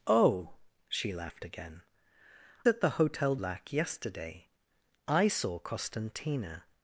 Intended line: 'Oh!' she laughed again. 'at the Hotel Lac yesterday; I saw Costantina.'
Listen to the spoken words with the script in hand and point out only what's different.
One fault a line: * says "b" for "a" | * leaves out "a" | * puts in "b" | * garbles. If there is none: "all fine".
all fine